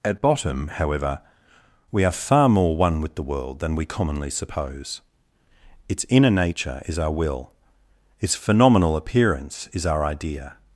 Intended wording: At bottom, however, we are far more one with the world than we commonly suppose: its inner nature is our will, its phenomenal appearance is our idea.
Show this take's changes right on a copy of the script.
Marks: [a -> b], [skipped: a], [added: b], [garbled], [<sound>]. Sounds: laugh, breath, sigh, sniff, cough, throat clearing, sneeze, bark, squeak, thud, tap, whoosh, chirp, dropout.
At bottom, however, we are far more one with the world than we commonly suppose: its inner nature is our will, its phenomenal appearance is our idea.